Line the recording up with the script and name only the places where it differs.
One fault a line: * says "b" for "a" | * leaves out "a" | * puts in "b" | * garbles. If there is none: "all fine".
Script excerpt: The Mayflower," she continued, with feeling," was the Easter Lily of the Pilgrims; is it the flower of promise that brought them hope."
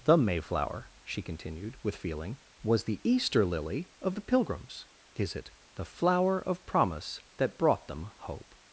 all fine